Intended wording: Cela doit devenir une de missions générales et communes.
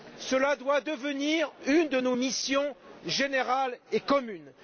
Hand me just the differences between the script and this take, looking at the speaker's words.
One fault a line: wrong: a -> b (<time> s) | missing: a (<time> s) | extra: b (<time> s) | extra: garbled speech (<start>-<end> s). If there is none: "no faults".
extra: nos (2.0 s)